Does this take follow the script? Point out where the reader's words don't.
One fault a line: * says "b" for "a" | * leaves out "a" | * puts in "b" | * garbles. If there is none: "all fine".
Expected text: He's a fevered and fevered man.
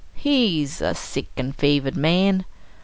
* says "sick" for "fevered"